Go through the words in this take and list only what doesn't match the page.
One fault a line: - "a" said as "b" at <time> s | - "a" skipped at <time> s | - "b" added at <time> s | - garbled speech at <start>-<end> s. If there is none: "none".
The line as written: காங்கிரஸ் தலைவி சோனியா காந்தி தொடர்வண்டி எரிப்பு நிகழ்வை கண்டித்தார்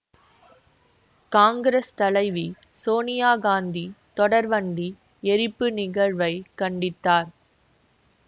none